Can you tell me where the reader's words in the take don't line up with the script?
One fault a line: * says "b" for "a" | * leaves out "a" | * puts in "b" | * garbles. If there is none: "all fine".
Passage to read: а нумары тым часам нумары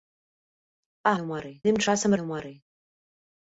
all fine